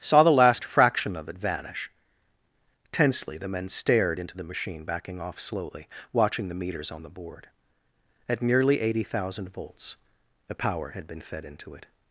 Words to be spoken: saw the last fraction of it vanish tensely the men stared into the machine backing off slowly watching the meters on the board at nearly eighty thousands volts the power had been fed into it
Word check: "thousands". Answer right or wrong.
wrong